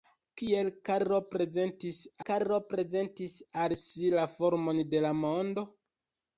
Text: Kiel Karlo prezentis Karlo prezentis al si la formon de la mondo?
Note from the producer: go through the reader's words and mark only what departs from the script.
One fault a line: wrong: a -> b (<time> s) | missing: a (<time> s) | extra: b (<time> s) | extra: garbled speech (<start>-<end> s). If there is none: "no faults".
no faults